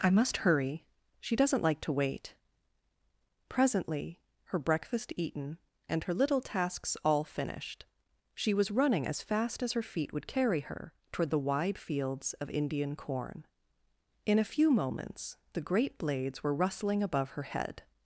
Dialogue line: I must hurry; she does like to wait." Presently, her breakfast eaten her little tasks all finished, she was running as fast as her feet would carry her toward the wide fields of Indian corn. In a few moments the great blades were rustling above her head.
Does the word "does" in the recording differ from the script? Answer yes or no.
yes